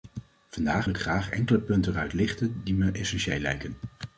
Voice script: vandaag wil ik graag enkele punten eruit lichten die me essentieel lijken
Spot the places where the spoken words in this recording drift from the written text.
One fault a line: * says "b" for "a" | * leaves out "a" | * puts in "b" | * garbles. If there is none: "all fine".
* leaves out "wil"